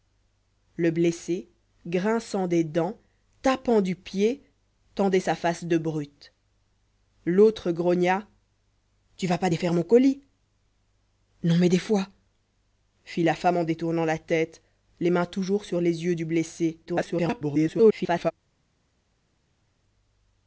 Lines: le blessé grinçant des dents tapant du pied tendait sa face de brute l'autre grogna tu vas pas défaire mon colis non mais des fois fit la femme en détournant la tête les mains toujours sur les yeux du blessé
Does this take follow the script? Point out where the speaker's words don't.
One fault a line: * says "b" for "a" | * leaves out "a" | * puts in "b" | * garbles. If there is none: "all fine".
* garbles